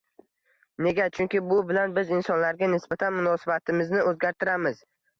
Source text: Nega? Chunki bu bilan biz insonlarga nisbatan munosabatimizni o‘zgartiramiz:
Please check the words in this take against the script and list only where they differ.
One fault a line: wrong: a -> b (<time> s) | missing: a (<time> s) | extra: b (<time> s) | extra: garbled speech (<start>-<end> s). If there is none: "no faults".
no faults